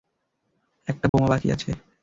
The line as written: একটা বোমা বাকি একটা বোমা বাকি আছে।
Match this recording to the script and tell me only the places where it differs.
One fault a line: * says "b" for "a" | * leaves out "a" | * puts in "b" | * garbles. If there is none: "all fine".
* leaves out "একটা বোমা বাকি"